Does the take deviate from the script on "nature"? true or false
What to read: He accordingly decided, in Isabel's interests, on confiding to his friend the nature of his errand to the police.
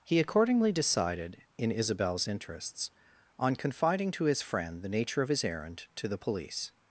false